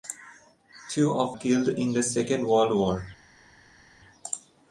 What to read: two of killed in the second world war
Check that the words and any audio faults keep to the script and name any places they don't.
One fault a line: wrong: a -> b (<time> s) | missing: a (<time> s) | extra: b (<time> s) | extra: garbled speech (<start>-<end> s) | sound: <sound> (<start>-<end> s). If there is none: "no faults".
no faults